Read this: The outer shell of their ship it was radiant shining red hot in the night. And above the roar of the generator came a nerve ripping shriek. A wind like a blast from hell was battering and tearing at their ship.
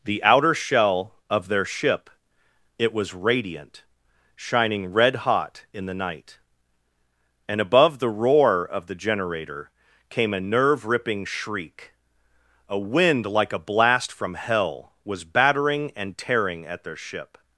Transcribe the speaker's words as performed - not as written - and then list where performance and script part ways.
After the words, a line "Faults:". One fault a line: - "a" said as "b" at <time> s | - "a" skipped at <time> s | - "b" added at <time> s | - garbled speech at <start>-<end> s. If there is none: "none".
The outer shell of their ship it was radiant shining red hot in the night. And above the roar of the generator came a nerve ripping shriek. A wind like a blast from hell was battering and tearing at their ship.
Faults:
none